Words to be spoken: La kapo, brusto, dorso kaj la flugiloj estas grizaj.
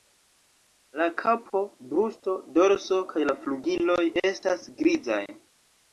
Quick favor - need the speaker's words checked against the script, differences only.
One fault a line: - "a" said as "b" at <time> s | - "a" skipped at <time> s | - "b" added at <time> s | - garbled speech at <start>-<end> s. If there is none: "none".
none